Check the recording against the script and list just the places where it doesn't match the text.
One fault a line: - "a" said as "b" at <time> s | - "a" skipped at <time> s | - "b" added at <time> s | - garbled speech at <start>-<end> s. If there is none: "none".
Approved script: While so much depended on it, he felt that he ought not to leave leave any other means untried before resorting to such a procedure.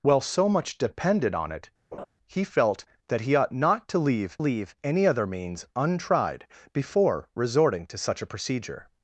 none